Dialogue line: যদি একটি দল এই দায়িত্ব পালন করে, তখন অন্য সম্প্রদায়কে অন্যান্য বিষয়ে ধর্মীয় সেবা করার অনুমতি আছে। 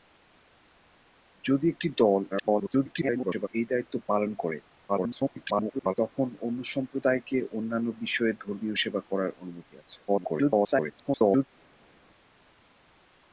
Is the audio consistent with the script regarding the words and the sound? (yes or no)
no